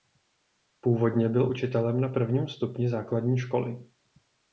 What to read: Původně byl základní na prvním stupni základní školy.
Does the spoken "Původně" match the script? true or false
true